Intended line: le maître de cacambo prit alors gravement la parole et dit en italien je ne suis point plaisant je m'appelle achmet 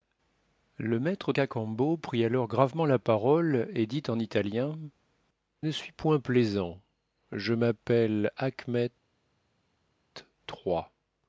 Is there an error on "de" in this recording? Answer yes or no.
yes